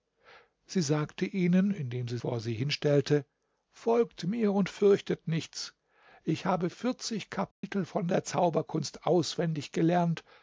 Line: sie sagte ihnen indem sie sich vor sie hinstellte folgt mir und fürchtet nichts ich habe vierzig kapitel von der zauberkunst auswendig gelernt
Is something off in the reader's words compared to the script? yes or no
yes